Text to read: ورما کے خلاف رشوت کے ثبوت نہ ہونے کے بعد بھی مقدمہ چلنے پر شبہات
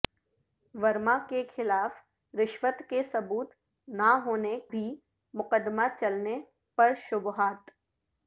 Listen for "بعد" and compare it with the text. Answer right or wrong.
wrong